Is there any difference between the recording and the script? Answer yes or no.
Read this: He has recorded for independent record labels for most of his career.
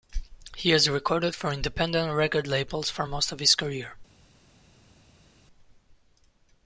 no